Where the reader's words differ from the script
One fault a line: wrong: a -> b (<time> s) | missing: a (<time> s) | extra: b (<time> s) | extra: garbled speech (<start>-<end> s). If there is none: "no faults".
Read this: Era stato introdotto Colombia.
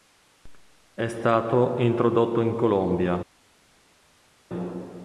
wrong: Era -> È (0.9 s)
extra: in (2.4 s)